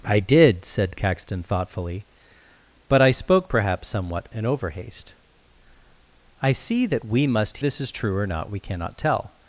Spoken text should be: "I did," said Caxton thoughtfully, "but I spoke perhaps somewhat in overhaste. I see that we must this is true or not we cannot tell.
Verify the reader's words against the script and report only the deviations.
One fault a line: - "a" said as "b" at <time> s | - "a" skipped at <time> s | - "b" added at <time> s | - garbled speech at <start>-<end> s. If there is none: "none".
none